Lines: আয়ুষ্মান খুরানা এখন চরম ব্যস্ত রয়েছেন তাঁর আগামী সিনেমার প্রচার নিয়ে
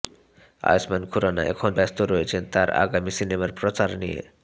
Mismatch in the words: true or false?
true